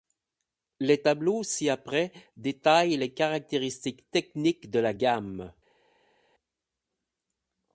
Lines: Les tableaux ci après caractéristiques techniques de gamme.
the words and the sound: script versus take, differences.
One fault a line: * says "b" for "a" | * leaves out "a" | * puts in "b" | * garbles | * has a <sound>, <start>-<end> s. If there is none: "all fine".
* puts in "détaillent les"
* puts in "la"